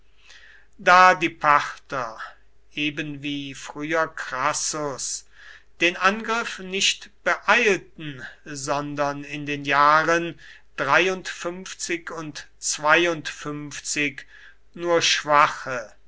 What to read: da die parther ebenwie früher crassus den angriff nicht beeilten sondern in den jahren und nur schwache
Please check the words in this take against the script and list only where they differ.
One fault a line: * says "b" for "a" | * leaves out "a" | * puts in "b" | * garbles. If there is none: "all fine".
all fine